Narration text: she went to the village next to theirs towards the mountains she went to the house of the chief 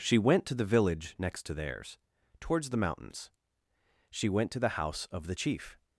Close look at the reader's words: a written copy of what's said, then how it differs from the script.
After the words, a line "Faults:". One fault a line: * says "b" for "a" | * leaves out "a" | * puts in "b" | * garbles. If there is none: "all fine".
she went to the village next to theirs towards the mountains she went to the house of the chief
Faults:
all fine